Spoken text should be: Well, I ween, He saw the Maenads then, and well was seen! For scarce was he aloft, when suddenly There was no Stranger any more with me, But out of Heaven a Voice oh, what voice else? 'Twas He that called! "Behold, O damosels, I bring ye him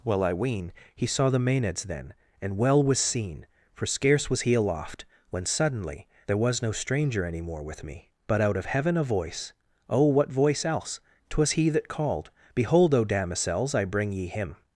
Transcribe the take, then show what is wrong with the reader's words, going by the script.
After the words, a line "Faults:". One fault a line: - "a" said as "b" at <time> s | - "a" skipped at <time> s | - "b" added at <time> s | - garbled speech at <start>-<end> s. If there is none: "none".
Well, I ween, He saw the Maenads then, and well was seen! For scarce was he aloft, when suddenly There was no Stranger any more with me, But out of Heaven a Voice oh, what voice else? 'Twas He that called! "Behold, O damosels, I bring ye him
Faults:
none